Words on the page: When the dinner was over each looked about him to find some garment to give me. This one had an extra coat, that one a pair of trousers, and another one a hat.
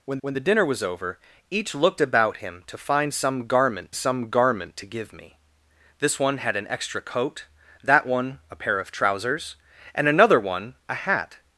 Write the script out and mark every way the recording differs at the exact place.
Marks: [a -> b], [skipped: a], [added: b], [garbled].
When [added: when] the dinner was over each looked about him to find some garment [added: some garment] to give me. This one had an extra coat, that one a pair of trousers, and another one a hat.